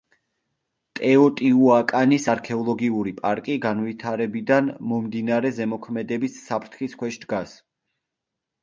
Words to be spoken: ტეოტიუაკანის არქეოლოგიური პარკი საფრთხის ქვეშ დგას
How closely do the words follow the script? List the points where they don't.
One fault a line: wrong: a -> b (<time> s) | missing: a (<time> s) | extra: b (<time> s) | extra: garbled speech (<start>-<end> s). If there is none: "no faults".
extra: განვითარებიდან მომდინარე ზემოქმედების (3.7 s)